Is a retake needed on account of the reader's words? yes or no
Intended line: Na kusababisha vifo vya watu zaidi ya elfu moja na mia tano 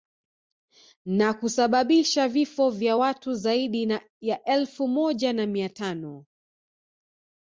no